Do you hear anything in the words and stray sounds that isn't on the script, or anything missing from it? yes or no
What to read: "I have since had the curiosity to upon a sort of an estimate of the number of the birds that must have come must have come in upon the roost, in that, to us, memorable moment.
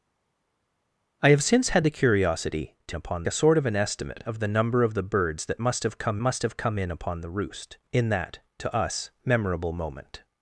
no